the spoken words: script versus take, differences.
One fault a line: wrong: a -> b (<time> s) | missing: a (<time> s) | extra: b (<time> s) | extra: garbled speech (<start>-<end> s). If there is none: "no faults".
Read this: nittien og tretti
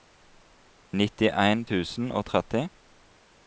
extra: tusen (1.7 s)